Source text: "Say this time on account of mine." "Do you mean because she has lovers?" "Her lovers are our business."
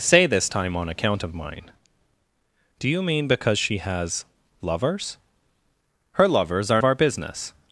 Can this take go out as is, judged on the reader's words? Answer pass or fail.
pass